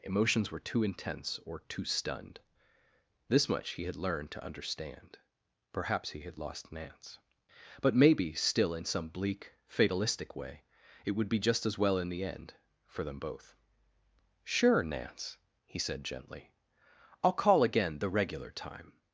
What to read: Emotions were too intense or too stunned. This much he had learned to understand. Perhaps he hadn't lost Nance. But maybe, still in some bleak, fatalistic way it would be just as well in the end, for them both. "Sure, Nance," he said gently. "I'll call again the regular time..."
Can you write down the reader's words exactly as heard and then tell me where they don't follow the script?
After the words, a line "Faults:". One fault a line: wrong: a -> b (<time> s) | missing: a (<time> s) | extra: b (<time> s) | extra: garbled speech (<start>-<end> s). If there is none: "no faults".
Emotions were too intense or too stunned. This much he had learned to understand. Perhaps he had lost Nance. But maybe, still in some bleak, fatalistic way it would be just as well in the end, for them both. "Sure, Nance," he said gently. "I'll call again the regular time..."
Faults:
wrong: hadn't -> had (6.2 s)